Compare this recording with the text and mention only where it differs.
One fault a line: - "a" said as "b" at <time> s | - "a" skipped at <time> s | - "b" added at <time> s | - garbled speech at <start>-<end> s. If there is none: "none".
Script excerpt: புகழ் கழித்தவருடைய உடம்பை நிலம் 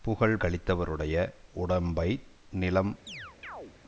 none